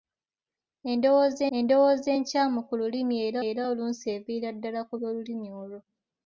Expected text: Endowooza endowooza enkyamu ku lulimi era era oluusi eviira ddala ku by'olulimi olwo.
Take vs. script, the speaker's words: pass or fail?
pass